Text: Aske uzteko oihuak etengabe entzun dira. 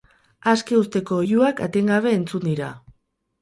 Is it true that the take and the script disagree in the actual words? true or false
false